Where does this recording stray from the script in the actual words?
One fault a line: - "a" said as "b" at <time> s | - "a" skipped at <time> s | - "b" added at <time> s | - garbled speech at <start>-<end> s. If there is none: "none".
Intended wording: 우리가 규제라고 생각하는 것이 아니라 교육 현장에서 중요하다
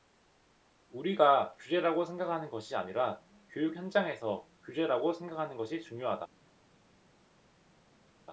- "규제라고 생각하는 것이" added at 4.6 s